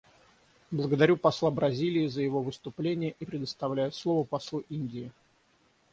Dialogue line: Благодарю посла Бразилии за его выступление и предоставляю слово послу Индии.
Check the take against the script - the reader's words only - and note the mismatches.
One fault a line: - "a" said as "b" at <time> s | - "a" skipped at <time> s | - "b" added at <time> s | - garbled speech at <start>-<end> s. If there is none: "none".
none